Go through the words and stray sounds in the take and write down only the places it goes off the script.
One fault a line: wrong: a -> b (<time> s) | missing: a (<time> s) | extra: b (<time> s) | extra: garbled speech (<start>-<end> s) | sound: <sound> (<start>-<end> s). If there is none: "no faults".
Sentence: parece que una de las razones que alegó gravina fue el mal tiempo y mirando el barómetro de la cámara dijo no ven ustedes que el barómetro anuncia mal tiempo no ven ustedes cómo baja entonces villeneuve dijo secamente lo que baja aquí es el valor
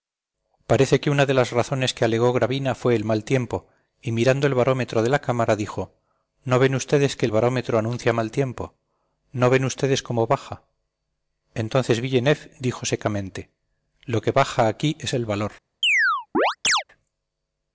sound: chirp (15.8-16.8 s)